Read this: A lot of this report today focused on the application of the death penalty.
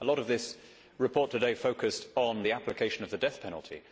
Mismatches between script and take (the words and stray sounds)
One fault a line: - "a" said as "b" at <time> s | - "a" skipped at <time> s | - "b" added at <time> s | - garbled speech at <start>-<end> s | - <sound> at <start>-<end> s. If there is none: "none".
none